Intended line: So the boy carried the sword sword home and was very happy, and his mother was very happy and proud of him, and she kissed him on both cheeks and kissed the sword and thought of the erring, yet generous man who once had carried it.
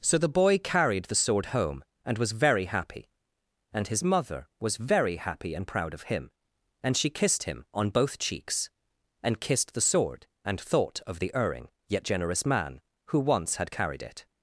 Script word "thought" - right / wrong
right